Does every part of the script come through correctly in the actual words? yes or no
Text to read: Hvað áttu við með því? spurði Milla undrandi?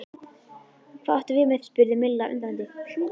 no